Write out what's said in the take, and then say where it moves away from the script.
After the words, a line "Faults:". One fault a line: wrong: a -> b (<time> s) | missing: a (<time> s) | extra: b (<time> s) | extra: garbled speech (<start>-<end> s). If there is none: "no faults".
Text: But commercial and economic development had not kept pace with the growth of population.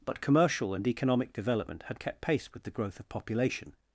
But commercial and economic development had kept pace with the growth of population.
Faults:
missing: not (2.0 s)